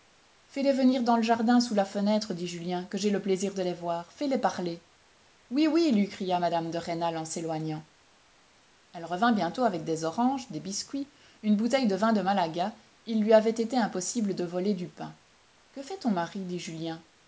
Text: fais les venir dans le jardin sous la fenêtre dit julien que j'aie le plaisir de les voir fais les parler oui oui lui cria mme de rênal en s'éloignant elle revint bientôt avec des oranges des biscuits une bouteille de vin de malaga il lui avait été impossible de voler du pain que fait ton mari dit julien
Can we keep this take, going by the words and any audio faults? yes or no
yes